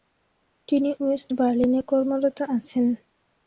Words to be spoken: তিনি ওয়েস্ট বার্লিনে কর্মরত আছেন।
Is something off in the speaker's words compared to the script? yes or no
no